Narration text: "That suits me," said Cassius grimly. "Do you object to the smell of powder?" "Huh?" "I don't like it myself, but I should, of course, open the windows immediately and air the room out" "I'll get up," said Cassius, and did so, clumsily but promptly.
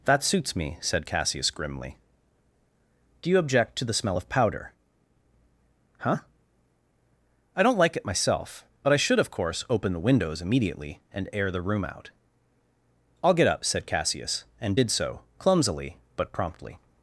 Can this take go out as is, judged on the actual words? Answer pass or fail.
pass